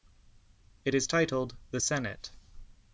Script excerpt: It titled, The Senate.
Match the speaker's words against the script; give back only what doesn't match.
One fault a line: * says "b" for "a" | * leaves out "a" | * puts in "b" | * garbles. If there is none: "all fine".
* puts in "is"